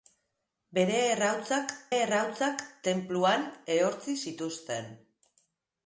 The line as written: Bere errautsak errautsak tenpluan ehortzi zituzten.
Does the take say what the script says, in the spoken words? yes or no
yes